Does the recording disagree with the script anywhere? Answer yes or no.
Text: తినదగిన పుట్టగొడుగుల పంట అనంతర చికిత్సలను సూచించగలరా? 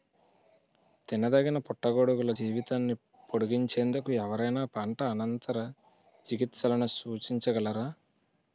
yes